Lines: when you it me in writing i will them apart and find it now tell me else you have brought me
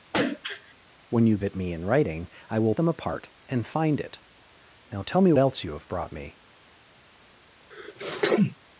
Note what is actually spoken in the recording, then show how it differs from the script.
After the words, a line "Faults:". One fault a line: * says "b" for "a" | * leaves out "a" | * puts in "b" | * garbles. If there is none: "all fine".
when you it me in writing i will them apart and find it now tell me else you have brought me
Faults:
all fine